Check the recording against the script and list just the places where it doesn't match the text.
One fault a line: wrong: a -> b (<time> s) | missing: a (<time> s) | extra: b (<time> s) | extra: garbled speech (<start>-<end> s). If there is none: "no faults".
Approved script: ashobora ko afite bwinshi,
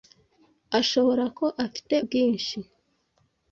no faults